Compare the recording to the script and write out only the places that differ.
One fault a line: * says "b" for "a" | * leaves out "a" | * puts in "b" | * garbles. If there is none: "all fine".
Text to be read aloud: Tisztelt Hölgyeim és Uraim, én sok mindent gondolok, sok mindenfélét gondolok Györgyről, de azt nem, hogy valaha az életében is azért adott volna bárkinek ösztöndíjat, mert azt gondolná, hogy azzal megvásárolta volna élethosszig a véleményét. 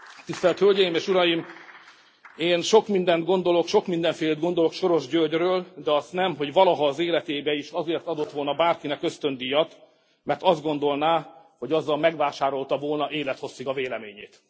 * puts in "Soros"